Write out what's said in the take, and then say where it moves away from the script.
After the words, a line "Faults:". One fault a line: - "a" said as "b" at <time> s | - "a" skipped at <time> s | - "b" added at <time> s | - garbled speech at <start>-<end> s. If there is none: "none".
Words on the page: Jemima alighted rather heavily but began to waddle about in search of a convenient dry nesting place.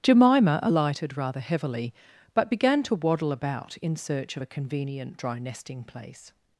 Jemima alighted rather heavily but began to waddle about in search of a convenient dry nesting place.
Faults:
none